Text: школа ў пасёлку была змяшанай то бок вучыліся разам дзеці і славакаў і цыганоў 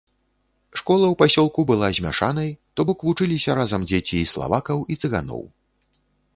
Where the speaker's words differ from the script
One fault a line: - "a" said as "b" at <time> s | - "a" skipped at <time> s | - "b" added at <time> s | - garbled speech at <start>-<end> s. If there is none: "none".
none